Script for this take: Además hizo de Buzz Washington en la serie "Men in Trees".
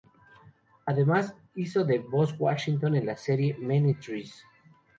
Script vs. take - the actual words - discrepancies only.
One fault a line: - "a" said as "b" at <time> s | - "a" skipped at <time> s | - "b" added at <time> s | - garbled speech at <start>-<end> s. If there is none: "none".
none